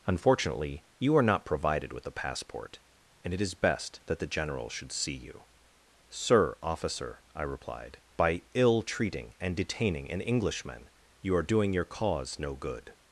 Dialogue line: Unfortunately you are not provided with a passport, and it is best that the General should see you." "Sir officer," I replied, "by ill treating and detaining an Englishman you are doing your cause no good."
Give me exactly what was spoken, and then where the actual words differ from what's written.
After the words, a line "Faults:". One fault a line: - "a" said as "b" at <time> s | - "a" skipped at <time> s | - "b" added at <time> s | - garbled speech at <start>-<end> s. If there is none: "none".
Unfortunately you are not provided with a passport, and it is best that the General should see you." "Sir officer," I replied, "by ill treating and detaining an Englishman you are doing your cause no good."
Faults:
none